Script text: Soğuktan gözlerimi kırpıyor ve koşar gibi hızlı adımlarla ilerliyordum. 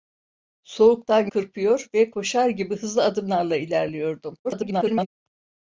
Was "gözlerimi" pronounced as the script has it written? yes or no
no